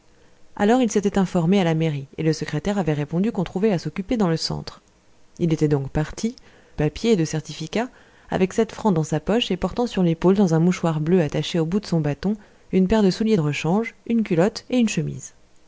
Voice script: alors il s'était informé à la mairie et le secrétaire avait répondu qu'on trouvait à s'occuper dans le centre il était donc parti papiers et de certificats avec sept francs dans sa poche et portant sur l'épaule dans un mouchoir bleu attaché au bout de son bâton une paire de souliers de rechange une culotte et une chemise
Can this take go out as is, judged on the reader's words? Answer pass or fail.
pass